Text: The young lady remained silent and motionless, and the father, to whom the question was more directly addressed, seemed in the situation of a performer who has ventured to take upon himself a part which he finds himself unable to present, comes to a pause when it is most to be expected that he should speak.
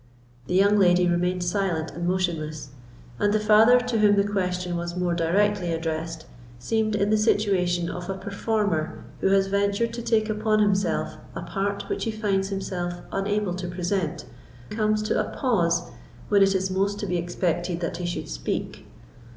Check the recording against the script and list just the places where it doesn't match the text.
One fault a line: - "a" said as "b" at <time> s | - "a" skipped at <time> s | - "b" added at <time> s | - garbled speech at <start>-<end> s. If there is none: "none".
none